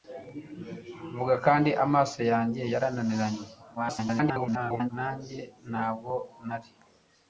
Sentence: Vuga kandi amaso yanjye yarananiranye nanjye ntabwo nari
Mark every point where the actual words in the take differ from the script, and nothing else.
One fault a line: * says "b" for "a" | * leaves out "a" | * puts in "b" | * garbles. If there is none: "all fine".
* garbles